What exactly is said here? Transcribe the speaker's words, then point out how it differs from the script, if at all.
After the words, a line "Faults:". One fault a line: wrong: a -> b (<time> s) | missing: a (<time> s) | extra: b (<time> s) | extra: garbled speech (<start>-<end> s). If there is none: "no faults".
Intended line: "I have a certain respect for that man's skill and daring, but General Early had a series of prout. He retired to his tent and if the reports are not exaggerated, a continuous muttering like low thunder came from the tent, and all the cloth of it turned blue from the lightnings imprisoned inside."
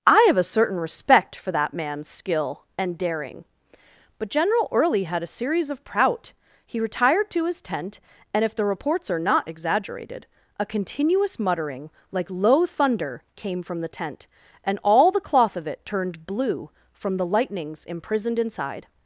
"I have a certain respect for that man's skill and daring, but General Early had a series of prout. He retired to his tent and if the reports are not exaggerated, a continuous muttering like low thunder came from the tent, and all the cloth of it turned blue from the lightnings imprisoned inside."
Faults:
no faults